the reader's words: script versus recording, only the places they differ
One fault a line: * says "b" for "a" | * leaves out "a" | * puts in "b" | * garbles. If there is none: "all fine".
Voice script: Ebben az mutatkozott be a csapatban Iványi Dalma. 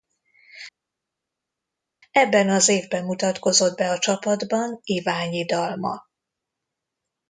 * puts in "évben"